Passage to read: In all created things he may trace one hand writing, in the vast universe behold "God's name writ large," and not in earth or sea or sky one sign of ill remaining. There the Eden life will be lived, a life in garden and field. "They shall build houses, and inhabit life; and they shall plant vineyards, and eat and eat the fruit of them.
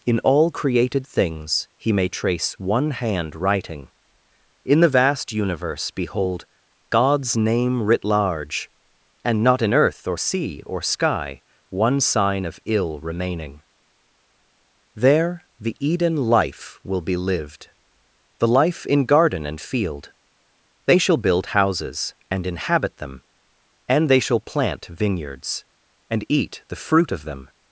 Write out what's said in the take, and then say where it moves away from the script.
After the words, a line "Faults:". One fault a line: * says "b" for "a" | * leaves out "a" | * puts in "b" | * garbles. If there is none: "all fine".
In all created things he may trace one hand writing, in the vast universe behold "God's name writ large," and not in earth or sea or sky one sign of ill remaining. There the Eden life will be lived, the life in garden and field. "They shall build houses, and inhabit them; and they shall plant vineyards, and eat the fruit of them.
Faults:
* says "the" for "a"
* says "them" for "life"
* leaves out "and eat"